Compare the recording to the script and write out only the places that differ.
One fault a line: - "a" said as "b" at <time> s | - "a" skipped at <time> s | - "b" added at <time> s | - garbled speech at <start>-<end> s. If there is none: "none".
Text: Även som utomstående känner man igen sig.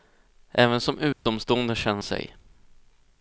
- "man igen" skipped at 2.0 s